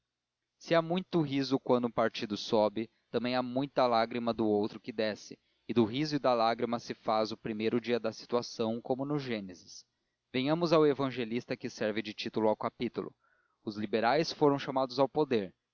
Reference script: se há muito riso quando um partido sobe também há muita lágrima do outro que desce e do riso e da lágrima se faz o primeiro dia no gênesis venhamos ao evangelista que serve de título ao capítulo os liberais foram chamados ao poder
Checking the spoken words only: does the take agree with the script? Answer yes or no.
no